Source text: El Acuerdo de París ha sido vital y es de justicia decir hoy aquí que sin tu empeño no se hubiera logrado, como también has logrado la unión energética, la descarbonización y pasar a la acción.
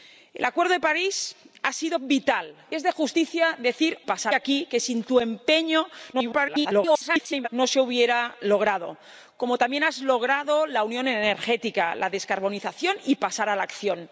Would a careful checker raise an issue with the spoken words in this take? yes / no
yes